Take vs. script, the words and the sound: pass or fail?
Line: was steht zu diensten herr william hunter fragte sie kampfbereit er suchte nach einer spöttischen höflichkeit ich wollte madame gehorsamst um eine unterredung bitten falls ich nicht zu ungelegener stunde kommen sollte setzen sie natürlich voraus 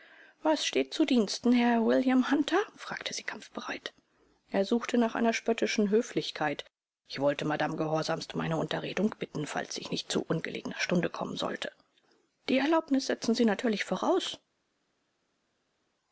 fail